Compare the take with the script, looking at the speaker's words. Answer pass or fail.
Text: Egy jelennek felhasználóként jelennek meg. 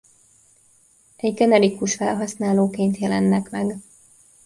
fail